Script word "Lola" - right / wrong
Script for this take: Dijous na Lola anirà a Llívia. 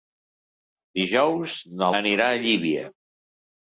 wrong